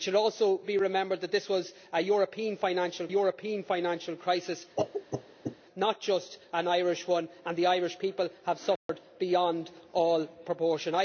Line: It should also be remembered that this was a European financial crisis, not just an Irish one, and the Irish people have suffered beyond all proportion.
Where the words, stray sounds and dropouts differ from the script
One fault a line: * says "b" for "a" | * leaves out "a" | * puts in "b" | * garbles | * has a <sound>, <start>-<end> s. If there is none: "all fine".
* puts in "European financial"
* has a cough, 4.8-5.6 s
* has a dropout, 8.8-8.9 s